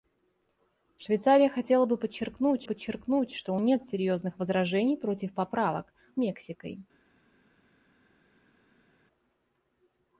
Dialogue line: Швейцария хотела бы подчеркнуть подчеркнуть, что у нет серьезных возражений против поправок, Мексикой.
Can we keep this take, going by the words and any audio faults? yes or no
yes